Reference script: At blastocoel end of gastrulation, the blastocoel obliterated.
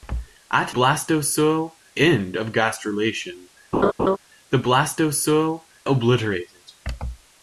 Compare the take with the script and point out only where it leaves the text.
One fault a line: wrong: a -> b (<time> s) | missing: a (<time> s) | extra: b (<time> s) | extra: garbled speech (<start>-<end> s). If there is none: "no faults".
no faults